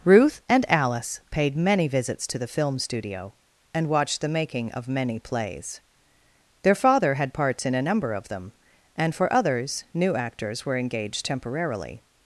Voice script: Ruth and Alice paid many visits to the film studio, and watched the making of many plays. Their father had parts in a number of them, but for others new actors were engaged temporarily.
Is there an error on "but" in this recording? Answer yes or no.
yes